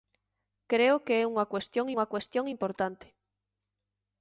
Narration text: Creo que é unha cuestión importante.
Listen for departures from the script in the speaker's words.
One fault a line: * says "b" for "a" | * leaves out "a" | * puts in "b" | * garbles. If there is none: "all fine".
* puts in "unha cuestión"